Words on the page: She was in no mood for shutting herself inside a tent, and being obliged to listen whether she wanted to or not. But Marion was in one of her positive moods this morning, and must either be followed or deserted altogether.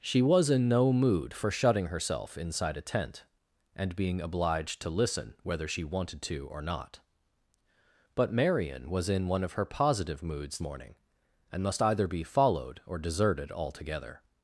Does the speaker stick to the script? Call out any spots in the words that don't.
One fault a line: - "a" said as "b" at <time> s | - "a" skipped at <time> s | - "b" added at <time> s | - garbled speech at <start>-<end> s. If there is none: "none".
- "this" skipped at 10.6 s